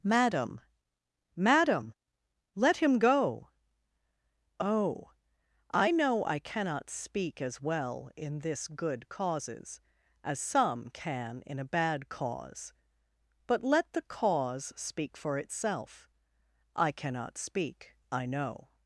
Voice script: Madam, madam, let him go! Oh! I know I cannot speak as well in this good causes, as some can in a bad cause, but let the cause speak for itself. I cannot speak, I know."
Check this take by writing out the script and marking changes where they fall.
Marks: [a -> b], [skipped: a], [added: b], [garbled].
Madam, madam, let him go! Oh! I know I cannot speak as well in this good causes, as some can in a bad cause, but let the cause speak for itself. I cannot speak, I know."